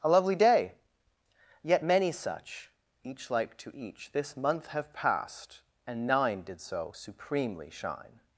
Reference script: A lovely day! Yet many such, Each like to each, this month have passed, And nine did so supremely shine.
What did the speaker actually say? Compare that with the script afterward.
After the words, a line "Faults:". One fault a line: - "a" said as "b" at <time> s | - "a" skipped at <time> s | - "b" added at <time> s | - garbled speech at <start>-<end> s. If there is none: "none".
A lovely day! Yet many such, Each like to each, this month have passed, And nine did so supremely shine.
Faults:
none